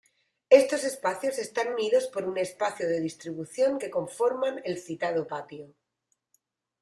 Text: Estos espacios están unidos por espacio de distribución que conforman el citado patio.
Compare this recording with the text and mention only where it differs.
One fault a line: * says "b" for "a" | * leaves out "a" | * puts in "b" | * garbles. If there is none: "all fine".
* puts in "un"